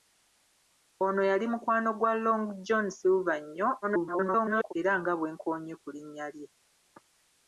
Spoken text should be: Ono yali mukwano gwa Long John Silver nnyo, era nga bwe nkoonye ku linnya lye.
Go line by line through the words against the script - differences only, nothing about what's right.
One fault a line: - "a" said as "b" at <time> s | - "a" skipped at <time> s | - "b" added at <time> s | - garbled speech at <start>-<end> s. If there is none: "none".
- garbled speech at 3.8-4.7 s